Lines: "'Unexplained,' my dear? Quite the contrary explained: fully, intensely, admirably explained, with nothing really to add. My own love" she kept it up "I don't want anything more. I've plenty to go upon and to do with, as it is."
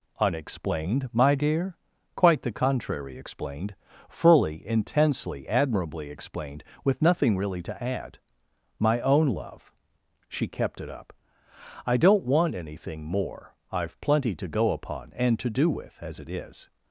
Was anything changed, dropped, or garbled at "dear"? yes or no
no